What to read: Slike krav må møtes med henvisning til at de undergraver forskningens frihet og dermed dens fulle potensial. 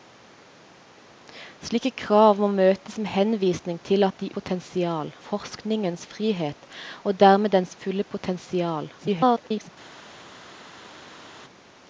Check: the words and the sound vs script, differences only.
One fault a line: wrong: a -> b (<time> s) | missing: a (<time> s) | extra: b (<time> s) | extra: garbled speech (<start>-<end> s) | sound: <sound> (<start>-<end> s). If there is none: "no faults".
wrong: undergraver -> potensial (4.4 s)
extra: garbled speech (9.0-9.7 s)